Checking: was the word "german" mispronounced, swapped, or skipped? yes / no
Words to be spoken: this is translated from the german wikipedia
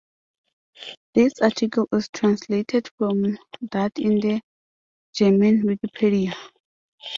no